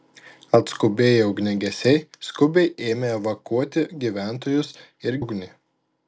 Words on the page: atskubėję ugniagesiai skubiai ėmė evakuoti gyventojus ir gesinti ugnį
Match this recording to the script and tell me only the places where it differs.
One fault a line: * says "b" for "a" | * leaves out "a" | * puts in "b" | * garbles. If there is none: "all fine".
* leaves out "gesinti"